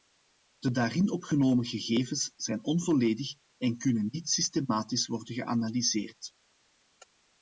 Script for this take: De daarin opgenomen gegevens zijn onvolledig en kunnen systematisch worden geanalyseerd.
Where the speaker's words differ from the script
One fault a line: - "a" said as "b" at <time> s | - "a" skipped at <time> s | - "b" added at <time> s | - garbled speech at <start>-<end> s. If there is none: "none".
- "niet" added at 4.1 s